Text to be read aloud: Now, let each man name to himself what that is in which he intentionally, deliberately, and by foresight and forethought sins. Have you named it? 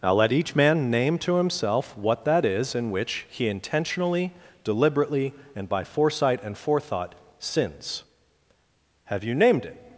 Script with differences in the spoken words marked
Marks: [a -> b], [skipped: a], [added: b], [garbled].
Now, let each man name to himself what that is in which he intentionally, deliberately, and by foresight and forethought sins. Have you named it?